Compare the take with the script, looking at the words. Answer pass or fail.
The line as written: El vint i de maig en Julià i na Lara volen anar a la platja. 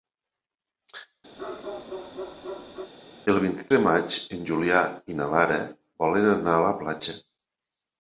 pass